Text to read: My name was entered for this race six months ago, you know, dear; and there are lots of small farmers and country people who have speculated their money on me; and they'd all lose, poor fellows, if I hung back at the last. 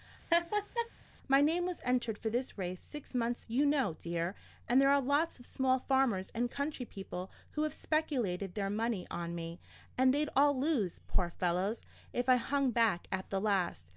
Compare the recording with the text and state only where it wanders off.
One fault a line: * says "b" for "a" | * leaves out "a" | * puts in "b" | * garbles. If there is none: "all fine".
* leaves out "ago"